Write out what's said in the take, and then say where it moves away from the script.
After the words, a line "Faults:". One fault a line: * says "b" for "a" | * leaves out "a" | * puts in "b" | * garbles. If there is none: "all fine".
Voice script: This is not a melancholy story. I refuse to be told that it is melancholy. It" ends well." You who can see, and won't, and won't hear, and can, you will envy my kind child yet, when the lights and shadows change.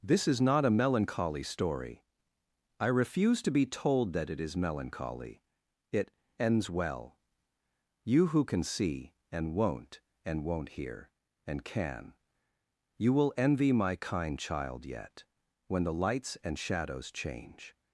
This is not a melancholy story. I refuse to be told that it is melancholy. It" ends well." You who can see, and won't, and won't hear, and can, you will envy my kind child yet, when the lights and shadows change.
Faults:
all fine